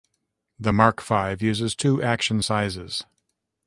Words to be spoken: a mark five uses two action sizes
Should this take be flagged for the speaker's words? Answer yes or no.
yes